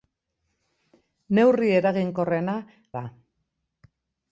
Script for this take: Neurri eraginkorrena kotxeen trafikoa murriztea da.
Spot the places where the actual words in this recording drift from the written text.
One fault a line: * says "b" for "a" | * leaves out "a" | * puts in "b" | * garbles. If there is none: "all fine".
* leaves out "kotxeen trafikoa murriztea"